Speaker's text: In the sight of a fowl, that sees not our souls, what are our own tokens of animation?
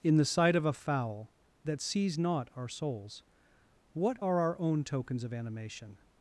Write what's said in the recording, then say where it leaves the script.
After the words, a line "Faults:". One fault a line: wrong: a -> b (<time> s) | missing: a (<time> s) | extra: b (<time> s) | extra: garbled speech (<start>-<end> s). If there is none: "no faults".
In the sight of a fowl, that sees not our souls, what are our own tokens of animation?
Faults:
no faults